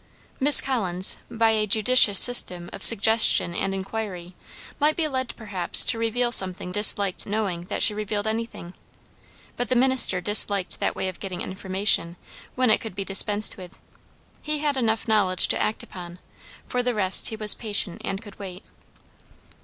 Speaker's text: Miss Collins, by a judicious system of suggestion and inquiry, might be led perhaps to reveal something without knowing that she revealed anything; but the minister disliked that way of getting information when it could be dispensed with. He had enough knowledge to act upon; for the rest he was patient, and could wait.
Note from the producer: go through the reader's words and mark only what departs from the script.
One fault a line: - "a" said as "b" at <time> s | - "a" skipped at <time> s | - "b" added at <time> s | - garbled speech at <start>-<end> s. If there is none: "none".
- "without" said as "disliked" at 6.7 s